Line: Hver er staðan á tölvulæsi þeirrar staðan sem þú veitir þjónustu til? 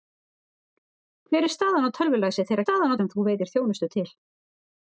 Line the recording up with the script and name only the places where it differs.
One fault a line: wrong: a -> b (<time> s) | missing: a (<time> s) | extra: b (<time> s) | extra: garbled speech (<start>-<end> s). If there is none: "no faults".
no faults